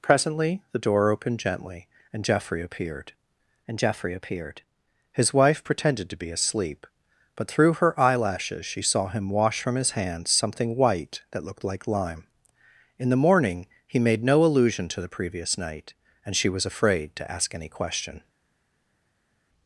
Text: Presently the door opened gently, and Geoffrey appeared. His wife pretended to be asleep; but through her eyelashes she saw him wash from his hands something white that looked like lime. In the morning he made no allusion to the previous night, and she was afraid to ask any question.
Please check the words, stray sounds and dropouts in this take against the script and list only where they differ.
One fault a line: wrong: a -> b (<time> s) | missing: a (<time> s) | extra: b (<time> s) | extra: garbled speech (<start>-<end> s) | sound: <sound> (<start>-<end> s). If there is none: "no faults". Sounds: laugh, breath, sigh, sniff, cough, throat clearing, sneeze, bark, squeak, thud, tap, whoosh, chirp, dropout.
extra: and Geoffrey appeared (3.7 s)